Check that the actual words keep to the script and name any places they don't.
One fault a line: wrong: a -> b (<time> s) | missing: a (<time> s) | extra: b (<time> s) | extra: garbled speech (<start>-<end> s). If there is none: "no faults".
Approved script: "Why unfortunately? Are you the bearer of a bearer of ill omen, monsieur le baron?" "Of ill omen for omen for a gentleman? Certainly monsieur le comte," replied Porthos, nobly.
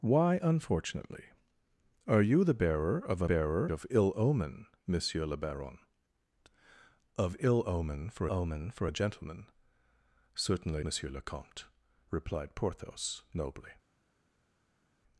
no faults